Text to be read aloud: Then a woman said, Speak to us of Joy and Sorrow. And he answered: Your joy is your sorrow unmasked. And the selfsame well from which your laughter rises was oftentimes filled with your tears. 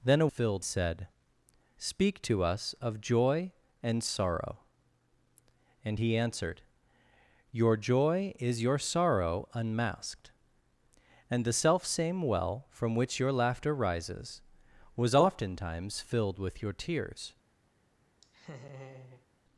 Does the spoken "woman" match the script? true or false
false